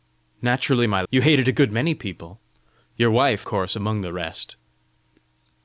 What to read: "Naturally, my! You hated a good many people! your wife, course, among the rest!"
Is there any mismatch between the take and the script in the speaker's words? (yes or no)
no